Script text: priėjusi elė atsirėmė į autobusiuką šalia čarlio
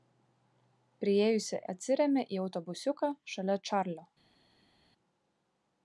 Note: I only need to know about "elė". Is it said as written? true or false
false